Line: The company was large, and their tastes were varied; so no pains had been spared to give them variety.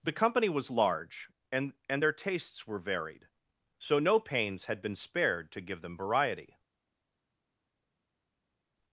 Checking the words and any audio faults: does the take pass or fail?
fail